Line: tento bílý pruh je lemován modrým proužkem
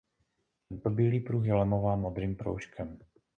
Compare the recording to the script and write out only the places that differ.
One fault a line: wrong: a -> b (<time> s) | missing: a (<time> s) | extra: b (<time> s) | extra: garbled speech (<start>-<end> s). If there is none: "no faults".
no faults